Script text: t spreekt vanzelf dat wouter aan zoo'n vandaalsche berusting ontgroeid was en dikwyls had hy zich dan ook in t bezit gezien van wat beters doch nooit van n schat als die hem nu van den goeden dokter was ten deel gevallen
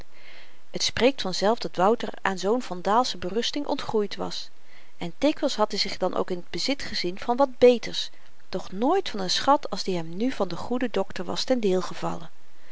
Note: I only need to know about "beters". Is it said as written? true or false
true